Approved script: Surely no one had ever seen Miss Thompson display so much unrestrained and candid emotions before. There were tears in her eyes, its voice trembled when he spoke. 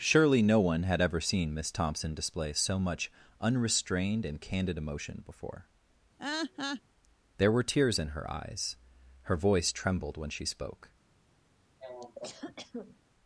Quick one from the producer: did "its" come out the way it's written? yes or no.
no